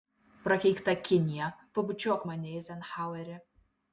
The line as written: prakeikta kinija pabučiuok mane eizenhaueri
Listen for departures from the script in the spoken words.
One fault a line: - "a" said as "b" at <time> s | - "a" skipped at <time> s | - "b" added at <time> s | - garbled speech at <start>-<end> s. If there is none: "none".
none